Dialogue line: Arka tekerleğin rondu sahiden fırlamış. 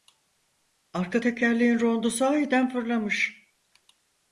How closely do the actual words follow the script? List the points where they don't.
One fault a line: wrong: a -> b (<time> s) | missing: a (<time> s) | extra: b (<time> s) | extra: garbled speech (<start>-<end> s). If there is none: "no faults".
no faults